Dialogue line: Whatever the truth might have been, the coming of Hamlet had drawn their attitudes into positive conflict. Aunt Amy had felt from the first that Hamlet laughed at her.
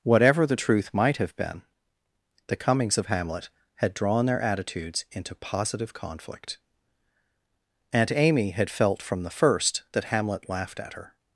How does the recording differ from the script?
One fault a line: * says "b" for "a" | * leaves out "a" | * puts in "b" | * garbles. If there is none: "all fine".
* says "comings" for "coming"